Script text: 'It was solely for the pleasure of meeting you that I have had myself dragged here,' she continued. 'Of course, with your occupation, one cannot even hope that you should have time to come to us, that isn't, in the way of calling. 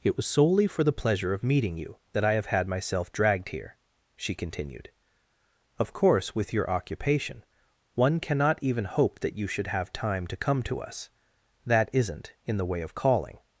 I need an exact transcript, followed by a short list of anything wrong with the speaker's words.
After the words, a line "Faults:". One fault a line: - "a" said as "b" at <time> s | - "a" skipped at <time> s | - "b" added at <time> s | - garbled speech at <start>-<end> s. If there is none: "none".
'It was solely for the pleasure of meeting you that I have had myself dragged here,' she continued. 'Of course, with your occupation, one cannot even hope that you should have time to come to us, that isn't, in the way of calling.
Faults:
none